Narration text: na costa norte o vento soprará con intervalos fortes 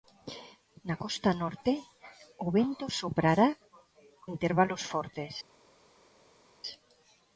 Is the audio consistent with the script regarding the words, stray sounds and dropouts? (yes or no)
no